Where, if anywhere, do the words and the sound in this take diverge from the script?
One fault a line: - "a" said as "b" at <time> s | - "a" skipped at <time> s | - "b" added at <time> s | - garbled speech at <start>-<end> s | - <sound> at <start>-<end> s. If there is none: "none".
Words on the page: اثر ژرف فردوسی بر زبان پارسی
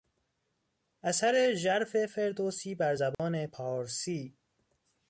- dropout at 3.1-3.2 s